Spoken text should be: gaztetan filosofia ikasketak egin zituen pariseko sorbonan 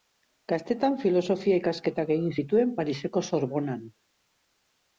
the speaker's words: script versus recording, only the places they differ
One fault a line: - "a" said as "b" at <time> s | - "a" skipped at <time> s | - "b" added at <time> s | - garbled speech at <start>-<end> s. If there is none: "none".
none